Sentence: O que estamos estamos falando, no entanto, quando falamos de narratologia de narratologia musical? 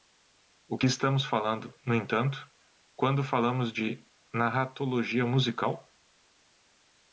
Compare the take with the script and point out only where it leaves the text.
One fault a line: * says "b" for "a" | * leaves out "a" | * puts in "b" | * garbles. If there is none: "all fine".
* leaves out "estamos"
* leaves out "de narratologia"